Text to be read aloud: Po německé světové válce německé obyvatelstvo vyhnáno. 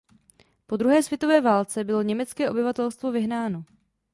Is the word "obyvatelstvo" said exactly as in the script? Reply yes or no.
yes